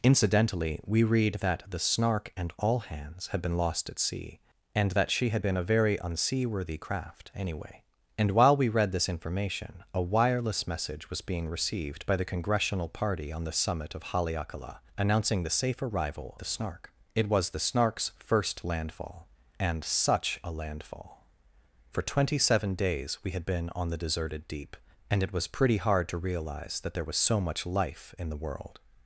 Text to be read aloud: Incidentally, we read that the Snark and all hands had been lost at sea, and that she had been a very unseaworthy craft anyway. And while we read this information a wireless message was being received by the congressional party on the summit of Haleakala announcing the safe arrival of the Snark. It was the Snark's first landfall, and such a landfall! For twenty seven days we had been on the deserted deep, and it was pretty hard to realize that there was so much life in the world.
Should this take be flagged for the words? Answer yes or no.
yes